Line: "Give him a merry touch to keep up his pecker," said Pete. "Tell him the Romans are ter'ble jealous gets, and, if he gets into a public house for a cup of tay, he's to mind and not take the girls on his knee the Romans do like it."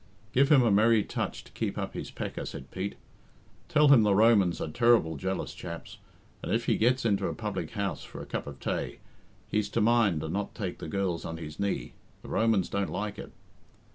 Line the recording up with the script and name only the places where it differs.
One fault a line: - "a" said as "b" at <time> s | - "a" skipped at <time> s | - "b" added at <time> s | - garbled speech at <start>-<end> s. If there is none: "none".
- "gets" said as "chaps" at 5.5 s
- "do" said as "don't" at 12.7 s